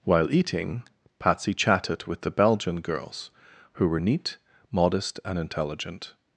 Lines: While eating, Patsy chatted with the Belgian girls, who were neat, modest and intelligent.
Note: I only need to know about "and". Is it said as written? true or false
true